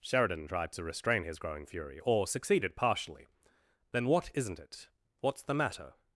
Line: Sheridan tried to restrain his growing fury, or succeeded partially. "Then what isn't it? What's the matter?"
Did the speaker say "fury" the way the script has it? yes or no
yes